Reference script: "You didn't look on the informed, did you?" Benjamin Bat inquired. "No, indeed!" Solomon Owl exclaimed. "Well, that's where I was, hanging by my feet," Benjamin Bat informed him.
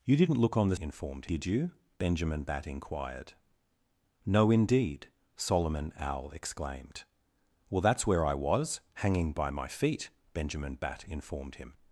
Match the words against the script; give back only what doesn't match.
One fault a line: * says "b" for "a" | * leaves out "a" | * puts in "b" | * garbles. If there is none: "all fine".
all fine